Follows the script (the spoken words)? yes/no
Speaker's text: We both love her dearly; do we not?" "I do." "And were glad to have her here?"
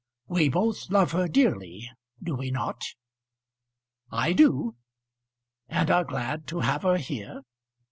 no